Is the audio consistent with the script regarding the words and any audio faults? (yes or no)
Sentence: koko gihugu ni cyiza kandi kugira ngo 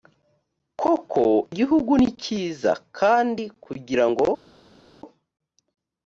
yes